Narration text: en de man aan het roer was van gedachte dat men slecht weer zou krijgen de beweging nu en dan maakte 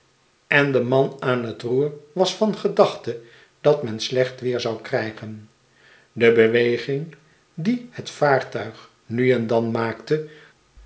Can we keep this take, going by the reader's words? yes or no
no